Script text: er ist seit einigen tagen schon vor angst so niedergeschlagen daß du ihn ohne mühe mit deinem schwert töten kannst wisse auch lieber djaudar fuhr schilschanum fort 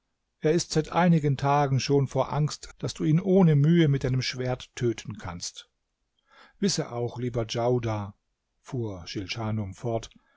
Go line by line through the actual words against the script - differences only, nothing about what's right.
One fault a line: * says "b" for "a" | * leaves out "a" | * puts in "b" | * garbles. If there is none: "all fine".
* leaves out "so niedergeschlagen"